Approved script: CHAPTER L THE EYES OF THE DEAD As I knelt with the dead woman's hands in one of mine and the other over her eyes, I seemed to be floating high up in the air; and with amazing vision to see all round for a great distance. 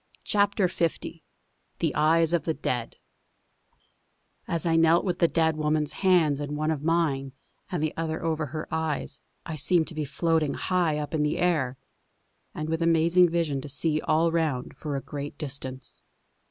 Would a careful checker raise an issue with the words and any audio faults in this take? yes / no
no